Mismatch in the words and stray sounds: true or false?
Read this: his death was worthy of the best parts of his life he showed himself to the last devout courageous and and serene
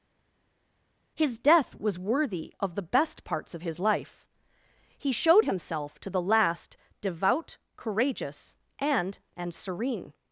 false